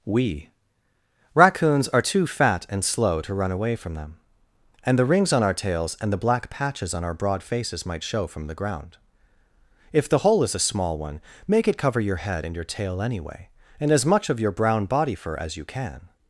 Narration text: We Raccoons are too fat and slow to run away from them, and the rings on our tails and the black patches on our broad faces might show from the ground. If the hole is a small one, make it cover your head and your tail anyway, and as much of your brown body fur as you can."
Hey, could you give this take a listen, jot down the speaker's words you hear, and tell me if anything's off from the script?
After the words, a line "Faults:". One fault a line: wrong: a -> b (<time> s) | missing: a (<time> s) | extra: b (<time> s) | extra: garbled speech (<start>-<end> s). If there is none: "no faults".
We Raccoons are too fat and slow to run away from them, and the rings on our tails and the black patches on our broad faces might show from the ground. If the hole is a small one, make it cover your head and your tail anyway, and as much of your brown body fur as you can."
Faults:
no faults